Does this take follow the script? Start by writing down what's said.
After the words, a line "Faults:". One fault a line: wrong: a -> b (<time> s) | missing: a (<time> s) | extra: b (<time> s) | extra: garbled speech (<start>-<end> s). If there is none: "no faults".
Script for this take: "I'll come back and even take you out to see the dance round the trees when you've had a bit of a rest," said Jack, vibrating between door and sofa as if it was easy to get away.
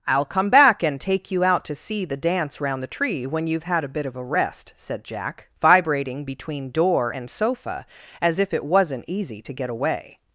"I'll come back and take you out to see the dance round the tree when you've had a bit of a rest," said Jack, vibrating between door and sofa as if it wasn't easy to get away.
Faults:
missing: even (1.0 s)
wrong: trees -> tree (2.9 s)
wrong: was -> wasn't (8.6 s)